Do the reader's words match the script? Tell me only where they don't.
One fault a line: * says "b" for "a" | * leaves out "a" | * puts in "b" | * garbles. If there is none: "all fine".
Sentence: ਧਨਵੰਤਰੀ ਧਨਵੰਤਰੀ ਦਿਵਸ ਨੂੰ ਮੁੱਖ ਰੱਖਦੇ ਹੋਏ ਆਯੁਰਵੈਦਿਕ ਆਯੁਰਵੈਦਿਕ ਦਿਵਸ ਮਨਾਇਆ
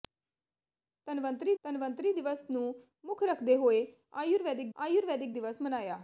all fine